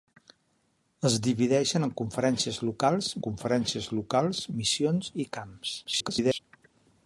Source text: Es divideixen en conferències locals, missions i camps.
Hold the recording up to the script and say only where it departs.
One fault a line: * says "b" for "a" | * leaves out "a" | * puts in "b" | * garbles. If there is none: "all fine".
* puts in "conferències locals"
* garbles